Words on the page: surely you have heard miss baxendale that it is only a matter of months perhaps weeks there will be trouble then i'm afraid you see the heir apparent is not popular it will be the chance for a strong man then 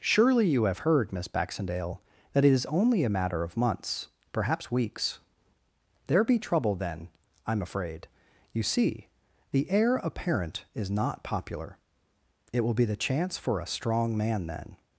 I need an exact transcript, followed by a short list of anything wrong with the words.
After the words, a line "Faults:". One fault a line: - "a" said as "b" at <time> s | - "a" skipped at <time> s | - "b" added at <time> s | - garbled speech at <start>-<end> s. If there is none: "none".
surely you have heard miss baxendale that it is only a matter of months perhaps weeks there be trouble then i'm afraid you see the heir apparent is not popular it will be the chance for a strong man then
Faults:
- "will" skipped at 6.2 s